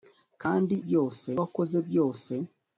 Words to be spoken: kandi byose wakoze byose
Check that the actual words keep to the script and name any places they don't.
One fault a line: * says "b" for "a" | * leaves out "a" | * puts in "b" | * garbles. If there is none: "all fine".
all fine